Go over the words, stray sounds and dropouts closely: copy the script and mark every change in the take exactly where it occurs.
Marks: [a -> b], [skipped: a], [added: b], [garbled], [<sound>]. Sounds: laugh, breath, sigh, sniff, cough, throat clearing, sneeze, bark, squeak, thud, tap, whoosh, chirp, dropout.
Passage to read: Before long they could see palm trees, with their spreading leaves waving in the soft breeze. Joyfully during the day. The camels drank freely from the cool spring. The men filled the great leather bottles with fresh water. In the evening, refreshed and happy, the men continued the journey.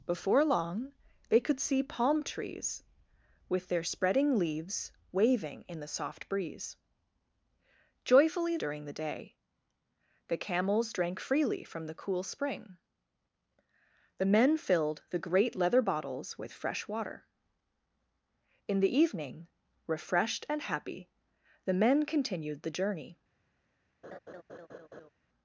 Before long they could see palm trees, with their spreading leaves waving in the soft breeze. Joyfully during the day. The camels drank freely from the cool spring. The men filled the great leather bottles with fresh water. In the evening, refreshed and happy, the men continued the journey. [laugh]